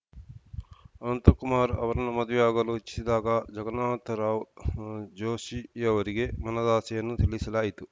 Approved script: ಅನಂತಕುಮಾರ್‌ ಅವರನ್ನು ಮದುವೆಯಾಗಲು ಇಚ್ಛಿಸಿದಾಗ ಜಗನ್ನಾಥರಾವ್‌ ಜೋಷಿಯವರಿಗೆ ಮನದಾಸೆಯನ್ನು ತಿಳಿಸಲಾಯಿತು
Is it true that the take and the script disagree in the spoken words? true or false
false